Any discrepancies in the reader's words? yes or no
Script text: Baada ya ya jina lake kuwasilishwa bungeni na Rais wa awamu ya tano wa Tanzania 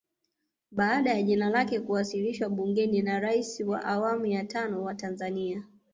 yes